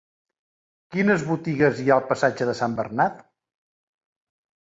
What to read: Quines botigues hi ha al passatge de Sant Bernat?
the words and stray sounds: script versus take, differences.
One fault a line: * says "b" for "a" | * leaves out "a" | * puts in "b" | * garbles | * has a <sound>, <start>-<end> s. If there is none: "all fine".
all fine